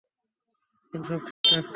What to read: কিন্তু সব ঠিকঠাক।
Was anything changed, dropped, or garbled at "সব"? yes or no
no